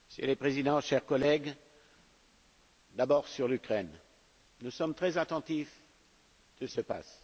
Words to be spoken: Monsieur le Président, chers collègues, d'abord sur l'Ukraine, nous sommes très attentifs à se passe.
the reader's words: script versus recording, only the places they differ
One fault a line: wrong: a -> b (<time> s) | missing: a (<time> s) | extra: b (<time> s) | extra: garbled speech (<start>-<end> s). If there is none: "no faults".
no faults